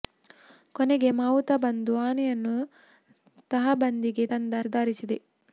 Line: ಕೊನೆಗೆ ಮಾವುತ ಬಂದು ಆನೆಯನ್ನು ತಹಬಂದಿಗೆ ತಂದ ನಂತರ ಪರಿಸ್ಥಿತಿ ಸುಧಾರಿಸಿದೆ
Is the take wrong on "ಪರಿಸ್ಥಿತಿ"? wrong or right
wrong